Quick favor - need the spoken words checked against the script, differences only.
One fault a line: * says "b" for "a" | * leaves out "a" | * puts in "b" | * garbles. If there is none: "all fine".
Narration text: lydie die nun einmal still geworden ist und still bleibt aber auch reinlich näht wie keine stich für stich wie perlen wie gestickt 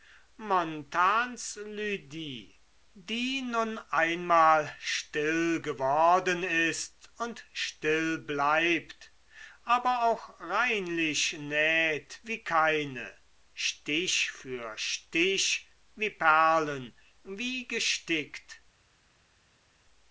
all fine